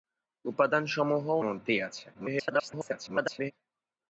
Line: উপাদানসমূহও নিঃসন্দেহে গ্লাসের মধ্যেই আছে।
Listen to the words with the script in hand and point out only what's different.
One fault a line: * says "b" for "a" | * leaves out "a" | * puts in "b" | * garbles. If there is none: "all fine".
* leaves out "নিঃসন্দেহে গ্লাসের"
* garbles